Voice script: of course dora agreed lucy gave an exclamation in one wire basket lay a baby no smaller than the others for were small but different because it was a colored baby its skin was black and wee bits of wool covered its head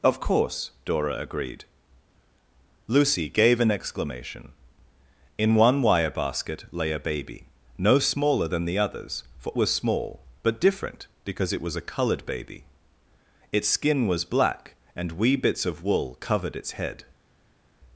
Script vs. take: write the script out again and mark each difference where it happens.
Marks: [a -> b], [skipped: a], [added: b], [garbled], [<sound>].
of course dora agreed lucy gave an exclamation in one wire basket lay a baby no smaller than the others for were small but different because it was a colored baby its skin was black and wee bits of wool covered its head